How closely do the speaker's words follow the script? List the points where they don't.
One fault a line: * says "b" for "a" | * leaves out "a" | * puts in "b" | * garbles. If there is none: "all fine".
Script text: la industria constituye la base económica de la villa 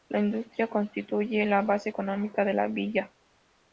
all fine